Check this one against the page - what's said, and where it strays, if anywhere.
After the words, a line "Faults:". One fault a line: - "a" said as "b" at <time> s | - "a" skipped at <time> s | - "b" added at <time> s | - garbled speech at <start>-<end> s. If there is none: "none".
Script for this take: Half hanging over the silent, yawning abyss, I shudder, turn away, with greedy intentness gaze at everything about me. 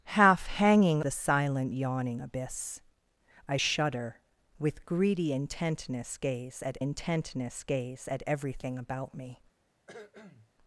Half hanging the silent, yawning abyss, I shudder, with greedy intentness gaze at intentness gaze at everything about me.
Faults:
- "over" skipped at 1.0 s
- "turn away with greedy" said as "with greedy intentness gaze at" at 4.6 s